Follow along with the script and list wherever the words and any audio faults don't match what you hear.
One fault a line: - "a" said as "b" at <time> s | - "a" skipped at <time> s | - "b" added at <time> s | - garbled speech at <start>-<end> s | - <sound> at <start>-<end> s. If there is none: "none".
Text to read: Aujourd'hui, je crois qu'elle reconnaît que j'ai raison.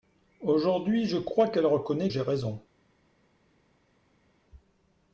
- "que" skipped at 2.1 s